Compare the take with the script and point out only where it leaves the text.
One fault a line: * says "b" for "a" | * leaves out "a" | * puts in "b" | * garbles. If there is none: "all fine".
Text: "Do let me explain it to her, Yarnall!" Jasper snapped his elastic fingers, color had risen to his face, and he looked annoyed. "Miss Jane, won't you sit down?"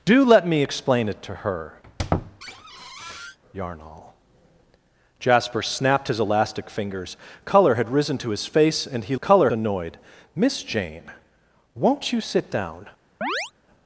* says "color" for "looked"